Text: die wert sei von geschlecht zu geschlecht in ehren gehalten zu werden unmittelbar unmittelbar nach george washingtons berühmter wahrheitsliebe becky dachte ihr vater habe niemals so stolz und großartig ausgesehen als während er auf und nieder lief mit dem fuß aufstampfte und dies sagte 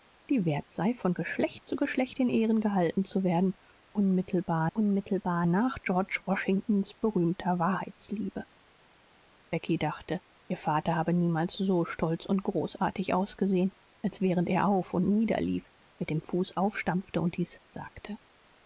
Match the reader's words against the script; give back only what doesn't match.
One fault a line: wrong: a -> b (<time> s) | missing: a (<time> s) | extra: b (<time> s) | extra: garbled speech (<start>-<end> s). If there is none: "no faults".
no faults